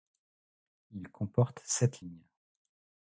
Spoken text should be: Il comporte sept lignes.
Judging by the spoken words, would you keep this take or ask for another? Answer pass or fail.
pass